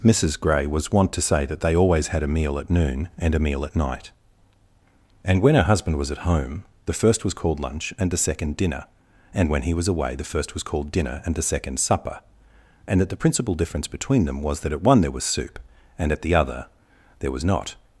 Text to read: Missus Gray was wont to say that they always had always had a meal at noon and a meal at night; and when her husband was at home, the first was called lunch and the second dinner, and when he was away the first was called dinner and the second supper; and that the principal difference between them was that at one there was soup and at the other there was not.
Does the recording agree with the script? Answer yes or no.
no